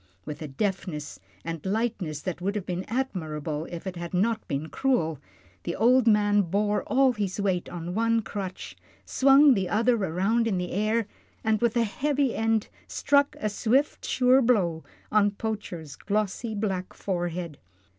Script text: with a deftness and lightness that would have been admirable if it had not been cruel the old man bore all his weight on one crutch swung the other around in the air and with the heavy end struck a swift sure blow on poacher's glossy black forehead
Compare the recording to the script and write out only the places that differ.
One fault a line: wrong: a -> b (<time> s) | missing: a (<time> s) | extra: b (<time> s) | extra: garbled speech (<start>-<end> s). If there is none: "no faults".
no faults